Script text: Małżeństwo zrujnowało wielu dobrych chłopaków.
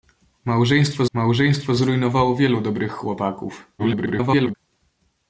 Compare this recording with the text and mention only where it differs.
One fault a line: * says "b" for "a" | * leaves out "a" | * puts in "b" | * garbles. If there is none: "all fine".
* puts in "małżeństwo"
* garbles